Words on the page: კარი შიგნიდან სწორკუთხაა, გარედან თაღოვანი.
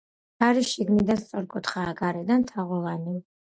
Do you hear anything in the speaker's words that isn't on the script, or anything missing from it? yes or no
no